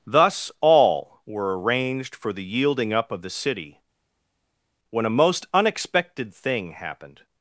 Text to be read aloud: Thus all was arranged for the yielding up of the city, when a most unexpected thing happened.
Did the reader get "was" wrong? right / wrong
wrong